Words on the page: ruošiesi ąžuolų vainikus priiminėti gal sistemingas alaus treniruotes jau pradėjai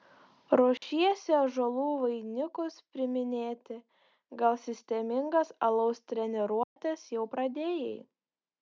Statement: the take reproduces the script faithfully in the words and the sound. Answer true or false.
false